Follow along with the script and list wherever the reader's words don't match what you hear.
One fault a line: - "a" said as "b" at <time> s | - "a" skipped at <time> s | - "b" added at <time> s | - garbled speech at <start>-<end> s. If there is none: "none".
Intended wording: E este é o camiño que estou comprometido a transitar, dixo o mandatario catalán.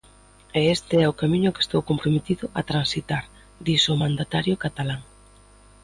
none